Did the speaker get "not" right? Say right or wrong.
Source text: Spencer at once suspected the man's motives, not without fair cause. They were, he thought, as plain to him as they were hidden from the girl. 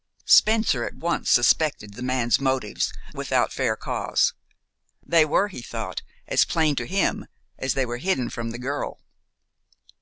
wrong